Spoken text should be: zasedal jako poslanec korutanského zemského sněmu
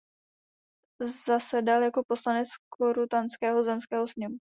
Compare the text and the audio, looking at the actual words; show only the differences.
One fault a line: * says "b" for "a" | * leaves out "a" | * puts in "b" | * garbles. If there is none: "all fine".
all fine